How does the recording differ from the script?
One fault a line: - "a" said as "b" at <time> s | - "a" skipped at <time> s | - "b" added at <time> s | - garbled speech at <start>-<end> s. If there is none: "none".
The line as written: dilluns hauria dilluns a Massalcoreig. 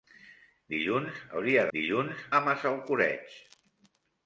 none